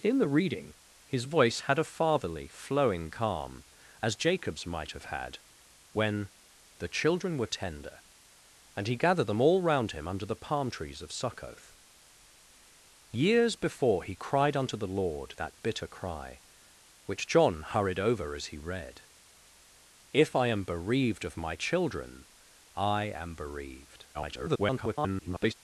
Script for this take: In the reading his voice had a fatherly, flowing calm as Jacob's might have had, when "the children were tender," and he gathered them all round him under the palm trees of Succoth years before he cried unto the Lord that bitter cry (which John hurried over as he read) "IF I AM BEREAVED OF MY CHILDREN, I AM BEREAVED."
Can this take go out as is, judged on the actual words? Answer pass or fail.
fail